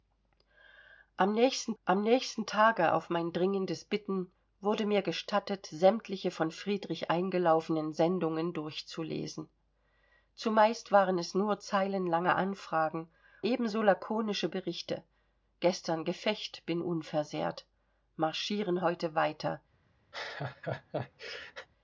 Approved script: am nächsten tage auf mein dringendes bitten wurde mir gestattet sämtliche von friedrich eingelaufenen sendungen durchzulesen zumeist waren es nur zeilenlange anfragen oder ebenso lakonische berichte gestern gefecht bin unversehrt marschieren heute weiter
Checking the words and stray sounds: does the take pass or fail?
fail